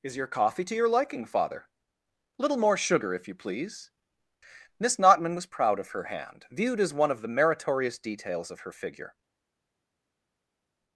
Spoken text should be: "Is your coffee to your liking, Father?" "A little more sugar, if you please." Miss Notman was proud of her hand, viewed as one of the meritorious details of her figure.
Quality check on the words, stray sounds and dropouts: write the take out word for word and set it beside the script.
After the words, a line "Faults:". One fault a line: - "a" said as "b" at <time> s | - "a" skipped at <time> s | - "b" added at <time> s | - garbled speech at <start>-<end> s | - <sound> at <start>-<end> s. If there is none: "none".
"Is your coffee to your liking, Father?" little more sugar, if you please." Miss Notman was proud of her hand, viewed as one of the meritorious details of her figure.
Faults:
- "A" skipped at 1.7 s